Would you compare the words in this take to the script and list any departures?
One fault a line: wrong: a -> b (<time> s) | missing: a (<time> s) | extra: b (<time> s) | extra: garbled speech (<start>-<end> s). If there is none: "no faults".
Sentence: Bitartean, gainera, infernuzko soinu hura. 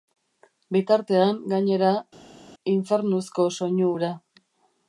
no faults